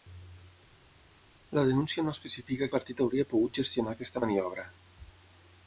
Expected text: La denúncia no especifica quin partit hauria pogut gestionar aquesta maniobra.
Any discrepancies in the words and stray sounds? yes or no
yes